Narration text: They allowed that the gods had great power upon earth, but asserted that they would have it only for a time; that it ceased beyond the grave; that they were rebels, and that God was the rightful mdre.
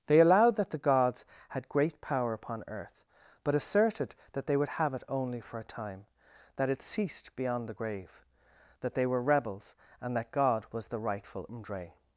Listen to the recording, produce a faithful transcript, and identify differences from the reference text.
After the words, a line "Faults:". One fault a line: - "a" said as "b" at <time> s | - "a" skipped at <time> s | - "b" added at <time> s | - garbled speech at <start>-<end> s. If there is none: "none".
They allowed that the gods had great power upon earth, but asserted that they would have it only for a time; that it ceased beyond the grave; that they were rebels, and that God was the rightful mdre.
Faults:
none